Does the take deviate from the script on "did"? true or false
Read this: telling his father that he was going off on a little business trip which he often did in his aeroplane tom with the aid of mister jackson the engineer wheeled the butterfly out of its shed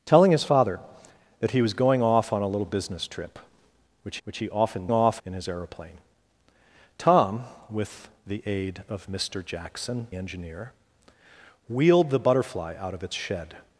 true